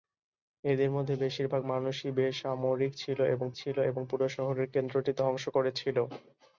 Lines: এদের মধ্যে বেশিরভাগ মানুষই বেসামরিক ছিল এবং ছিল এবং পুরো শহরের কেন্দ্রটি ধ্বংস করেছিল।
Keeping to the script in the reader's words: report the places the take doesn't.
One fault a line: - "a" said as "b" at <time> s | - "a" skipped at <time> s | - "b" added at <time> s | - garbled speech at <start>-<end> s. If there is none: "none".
none